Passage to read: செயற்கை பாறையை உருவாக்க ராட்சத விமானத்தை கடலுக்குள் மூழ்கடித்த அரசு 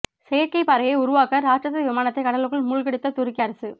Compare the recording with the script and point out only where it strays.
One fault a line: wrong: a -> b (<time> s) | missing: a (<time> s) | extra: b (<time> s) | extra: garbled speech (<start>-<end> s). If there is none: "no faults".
extra: துருக்கி (3.1 s)